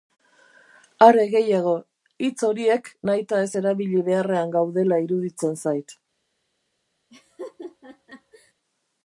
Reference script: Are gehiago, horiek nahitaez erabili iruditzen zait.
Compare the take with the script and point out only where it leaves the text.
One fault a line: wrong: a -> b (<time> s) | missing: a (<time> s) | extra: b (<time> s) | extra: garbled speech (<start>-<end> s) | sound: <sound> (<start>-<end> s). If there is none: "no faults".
extra: hitz (2.3 s)
extra: beharrean gaudela (4.1 s)
sound: laugh (7.1-8.5 s)